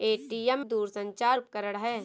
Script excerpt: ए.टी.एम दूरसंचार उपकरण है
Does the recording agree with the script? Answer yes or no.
yes